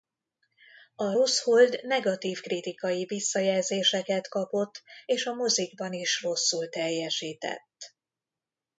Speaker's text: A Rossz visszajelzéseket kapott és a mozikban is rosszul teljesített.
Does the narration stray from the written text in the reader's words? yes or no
yes